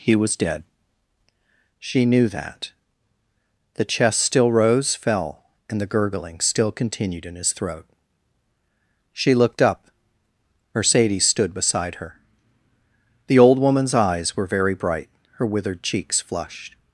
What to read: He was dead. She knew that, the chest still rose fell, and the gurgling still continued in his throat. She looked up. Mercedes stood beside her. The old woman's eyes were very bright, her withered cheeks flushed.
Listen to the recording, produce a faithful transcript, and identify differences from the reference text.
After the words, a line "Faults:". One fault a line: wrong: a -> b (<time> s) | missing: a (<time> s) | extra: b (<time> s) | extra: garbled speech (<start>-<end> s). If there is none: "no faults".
He was dead. She knew that, the chest still rose fell, and the gurgling still continued in his throat. She looked up. Mercedes stood beside her. The old woman's eyes were very bright, her withered cheeks flushed.
Faults:
no faults